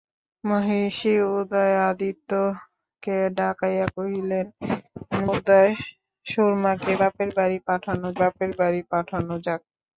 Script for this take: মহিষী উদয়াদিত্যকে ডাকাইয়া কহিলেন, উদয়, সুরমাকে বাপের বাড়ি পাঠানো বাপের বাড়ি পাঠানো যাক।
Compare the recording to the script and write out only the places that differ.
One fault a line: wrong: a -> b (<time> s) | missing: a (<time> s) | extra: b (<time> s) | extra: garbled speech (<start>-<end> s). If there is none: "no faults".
no faults